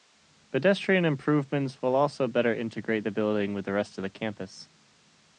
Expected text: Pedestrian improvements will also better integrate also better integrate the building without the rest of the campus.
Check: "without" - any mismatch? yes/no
yes